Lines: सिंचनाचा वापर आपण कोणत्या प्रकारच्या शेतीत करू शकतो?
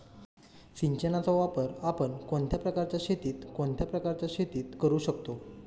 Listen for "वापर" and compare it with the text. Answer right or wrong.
right